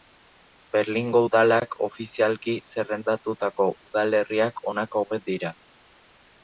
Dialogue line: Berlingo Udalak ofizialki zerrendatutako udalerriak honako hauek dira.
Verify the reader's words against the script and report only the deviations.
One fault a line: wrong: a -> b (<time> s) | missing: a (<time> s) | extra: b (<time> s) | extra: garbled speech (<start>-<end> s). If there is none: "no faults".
no faults